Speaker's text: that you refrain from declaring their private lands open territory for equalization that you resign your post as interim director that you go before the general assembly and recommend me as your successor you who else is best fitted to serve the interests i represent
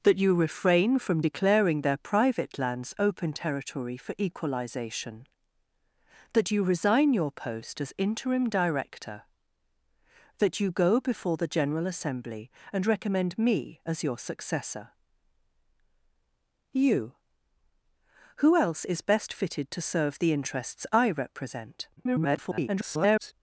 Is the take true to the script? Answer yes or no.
no